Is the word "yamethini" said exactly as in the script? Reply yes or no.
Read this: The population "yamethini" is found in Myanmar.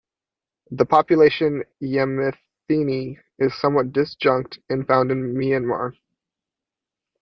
yes